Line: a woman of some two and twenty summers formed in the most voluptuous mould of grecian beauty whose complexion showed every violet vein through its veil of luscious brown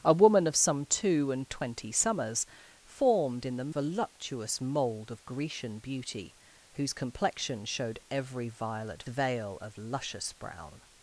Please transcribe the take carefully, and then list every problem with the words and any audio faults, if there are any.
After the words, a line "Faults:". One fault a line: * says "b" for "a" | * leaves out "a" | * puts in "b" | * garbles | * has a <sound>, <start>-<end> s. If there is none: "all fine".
a woman of some two and twenty summers formed in the voluptuous mould of grecian beauty whose complexion showed every violet veil of luscious brown
Faults:
* leaves out "most"
* leaves out "vein through its"